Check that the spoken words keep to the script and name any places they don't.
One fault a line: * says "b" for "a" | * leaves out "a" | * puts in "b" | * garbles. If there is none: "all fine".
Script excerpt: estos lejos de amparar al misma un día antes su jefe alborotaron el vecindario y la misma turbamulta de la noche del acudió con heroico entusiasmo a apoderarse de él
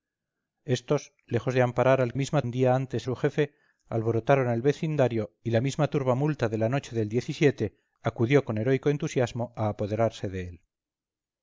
all fine